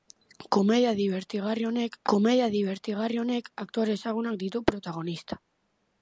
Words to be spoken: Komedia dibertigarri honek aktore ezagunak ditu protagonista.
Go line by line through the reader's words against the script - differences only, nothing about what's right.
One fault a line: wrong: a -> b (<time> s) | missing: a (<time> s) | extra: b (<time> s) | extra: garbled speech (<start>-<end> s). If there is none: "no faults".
extra: komedia dibertigarri honek (2.1 s)